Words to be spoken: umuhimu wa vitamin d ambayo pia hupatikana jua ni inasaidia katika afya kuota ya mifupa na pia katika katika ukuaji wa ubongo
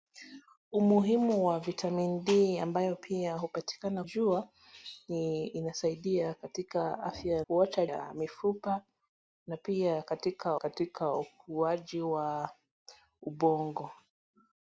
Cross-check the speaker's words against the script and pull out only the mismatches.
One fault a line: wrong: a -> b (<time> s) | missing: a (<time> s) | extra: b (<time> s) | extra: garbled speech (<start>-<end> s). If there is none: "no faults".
no faults